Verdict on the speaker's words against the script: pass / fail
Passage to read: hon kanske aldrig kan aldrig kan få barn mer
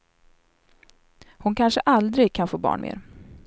fail